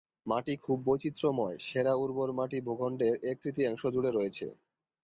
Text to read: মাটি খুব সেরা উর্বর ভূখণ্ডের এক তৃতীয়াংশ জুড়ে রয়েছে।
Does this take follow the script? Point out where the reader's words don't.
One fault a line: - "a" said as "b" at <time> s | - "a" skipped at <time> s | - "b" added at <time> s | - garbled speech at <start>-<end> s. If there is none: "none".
- "বৈচিত্র্যময়" added at 0.9 s
- "মাটি" added at 2.4 s